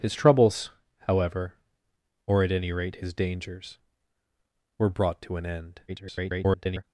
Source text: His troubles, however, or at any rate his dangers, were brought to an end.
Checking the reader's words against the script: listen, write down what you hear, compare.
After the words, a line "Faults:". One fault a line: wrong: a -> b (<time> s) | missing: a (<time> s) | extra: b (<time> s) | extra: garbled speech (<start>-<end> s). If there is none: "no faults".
His troubles, however, or at any rate his dangers, were brought to an end. [garbled]
Faults:
extra: garbled speech (5.9-6.8 s)